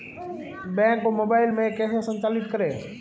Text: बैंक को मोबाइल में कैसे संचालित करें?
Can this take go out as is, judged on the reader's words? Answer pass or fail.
pass